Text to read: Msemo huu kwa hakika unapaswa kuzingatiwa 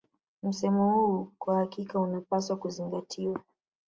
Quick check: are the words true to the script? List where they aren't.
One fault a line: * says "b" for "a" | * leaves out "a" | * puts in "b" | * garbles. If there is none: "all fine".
all fine